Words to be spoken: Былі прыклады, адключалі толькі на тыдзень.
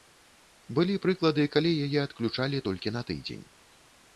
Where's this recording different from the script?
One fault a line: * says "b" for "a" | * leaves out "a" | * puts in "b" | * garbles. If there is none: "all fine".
* puts in "калі яе"